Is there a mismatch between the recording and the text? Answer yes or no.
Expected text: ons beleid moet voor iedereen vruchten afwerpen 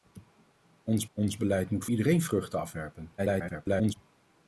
yes